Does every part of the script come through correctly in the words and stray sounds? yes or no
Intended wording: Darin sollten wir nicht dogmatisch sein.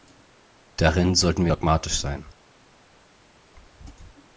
no